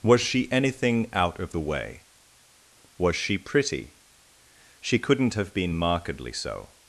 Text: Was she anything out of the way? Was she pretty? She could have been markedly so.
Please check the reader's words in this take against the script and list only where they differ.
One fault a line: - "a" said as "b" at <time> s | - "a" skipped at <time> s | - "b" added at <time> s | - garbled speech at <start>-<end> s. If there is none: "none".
- "could" said as "couldn't" at 5.0 s